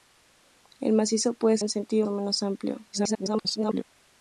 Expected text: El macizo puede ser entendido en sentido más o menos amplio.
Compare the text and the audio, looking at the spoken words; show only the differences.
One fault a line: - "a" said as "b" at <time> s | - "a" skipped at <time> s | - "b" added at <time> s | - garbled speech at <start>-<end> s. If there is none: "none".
- "ser entendido" skipped at 1.6 s
- "más" skipped at 2.1 s
- garbled speech at 2.9-3.8 s